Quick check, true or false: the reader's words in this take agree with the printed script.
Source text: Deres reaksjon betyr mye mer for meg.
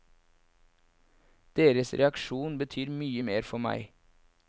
true